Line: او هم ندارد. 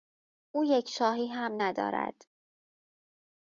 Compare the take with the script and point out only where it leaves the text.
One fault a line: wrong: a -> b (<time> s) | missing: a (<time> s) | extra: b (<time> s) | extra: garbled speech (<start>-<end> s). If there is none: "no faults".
extra: یک شاهی (0.7 s)